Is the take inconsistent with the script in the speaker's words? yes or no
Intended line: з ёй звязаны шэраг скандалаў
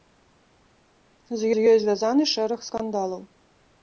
yes